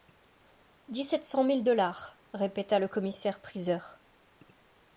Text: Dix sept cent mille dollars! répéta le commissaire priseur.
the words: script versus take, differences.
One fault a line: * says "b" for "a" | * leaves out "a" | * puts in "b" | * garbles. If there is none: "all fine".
all fine